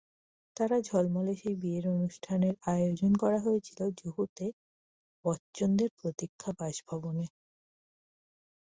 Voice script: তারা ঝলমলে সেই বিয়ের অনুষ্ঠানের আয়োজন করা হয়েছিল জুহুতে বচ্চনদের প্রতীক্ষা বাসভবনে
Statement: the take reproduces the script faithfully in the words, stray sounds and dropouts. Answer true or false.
true